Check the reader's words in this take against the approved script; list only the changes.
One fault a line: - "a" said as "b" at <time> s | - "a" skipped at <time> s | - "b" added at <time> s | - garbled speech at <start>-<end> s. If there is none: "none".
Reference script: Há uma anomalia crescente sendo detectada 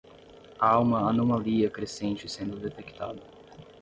none